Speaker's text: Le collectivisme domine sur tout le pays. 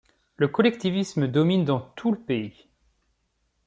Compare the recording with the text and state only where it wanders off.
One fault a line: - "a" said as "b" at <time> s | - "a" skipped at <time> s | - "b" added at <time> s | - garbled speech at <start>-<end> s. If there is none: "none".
- "sur" said as "dans" at 1.6 s